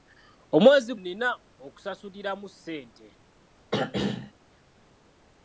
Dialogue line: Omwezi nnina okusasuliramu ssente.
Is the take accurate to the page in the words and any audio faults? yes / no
no